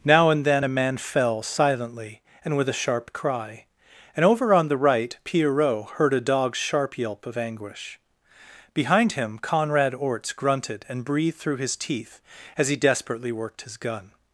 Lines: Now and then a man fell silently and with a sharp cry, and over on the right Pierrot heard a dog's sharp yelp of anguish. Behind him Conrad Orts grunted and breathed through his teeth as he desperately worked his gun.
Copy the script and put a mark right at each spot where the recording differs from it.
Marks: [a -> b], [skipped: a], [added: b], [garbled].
Now and then a man fell silently and with a sharp cry, and over on the right Pierrot heard a dog's sharp yelp of anguish. Behind him Conrad Orts grunted and breathed through his teeth as he desperately worked his gun.